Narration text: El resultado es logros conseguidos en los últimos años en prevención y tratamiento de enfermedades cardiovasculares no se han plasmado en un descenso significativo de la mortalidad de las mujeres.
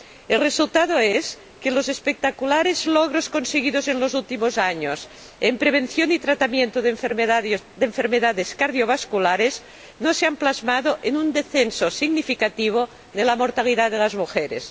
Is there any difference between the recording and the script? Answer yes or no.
yes